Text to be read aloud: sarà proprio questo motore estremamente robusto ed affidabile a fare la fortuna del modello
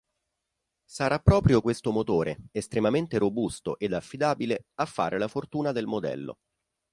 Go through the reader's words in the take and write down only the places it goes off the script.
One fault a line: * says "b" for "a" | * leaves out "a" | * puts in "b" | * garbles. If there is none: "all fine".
all fine